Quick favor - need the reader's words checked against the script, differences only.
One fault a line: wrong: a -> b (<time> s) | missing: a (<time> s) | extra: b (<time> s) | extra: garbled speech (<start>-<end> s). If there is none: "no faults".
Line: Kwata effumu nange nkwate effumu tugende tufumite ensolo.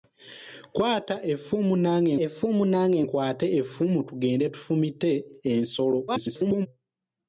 extra: effumu nange (2.2 s)
extra: garbled speech (6.1-6.7 s)